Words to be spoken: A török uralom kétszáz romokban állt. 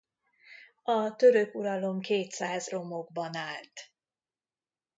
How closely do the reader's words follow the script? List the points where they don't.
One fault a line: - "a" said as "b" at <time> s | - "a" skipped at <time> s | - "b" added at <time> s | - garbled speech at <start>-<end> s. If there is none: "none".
none